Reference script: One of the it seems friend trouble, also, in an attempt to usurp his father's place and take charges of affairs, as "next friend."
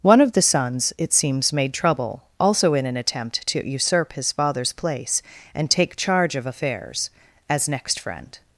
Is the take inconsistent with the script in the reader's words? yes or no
yes